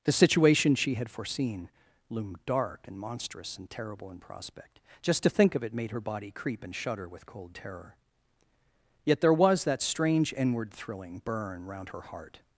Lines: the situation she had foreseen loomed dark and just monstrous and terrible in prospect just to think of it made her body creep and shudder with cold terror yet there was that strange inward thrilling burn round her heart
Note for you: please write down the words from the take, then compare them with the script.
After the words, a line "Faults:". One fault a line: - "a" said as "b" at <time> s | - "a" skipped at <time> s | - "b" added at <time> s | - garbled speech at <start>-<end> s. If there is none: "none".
the situation she had foreseen loomed dark and monstrous and terrible in prospect just to think of it made her body creep and shudder with cold terror yet there was that strange inward thrilling burn round her heart
Faults:
- "just" skipped at 3.0 s